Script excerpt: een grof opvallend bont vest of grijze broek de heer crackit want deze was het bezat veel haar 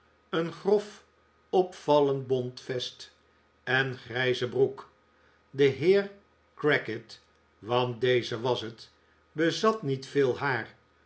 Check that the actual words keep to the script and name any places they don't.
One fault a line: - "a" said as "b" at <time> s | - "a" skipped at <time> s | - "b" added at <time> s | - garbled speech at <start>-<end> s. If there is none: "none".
- "of" said as "en" at 3.6 s
- "niet" added at 9.8 s